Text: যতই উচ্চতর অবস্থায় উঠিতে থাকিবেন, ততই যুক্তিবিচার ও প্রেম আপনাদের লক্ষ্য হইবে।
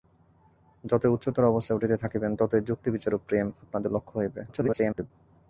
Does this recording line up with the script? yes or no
no